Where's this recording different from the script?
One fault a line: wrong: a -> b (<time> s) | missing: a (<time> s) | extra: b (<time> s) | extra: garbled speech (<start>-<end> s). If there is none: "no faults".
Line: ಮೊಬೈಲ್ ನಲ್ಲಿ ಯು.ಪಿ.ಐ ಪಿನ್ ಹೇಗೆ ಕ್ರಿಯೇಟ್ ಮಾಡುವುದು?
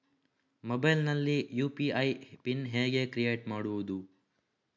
no faults